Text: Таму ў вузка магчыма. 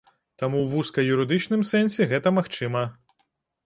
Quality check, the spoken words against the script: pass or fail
fail